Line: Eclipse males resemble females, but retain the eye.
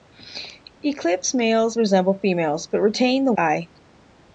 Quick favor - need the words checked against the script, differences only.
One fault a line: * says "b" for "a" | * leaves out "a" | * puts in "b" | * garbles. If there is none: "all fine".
all fine